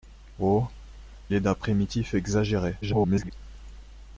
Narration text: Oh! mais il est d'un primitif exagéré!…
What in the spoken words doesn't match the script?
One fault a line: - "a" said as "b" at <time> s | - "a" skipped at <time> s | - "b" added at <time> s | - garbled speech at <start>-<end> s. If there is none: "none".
- "mais il" skipped at 0.7 s
- garbled speech at 2.8-3.3 s